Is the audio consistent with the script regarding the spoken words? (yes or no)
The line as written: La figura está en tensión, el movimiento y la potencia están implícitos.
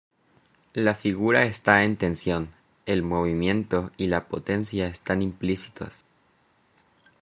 yes